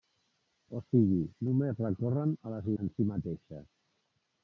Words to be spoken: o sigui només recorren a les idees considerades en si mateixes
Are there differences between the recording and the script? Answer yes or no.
yes